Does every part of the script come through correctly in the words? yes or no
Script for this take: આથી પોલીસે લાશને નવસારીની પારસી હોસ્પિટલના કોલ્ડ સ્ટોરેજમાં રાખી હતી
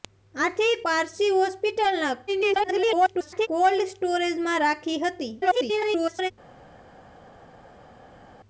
no